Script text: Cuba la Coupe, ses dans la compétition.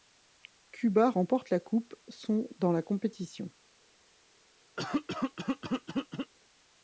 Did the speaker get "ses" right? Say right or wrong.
wrong